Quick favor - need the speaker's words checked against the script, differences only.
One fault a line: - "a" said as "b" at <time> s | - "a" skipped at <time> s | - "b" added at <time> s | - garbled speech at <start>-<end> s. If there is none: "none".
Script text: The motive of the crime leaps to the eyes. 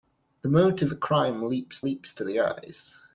- "of" skipped at 0.9 s
- "leaps" added at 1.8 s